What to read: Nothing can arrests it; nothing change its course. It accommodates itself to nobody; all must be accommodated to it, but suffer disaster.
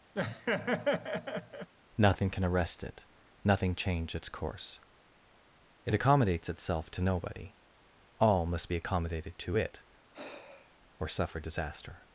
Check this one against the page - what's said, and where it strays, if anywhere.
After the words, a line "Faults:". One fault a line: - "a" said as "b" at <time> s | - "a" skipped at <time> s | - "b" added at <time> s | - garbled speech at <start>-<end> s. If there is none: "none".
Nothing can arrest it; nothing change its course. It accommodates itself to nobody; all must be accommodated to it, or suffer disaster.
Faults:
- "arrests" said as "arrest" at 2.4 s
- "but" said as "or" at 11.0 s